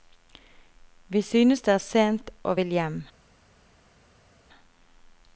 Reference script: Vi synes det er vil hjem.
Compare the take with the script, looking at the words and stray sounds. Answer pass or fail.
fail